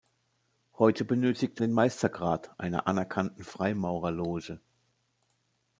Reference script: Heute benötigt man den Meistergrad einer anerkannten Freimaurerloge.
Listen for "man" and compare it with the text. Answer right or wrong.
wrong